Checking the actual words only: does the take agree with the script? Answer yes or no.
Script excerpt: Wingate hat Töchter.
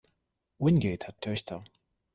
yes